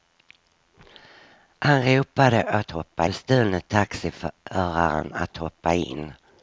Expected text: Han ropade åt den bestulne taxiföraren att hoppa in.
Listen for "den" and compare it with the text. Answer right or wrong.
wrong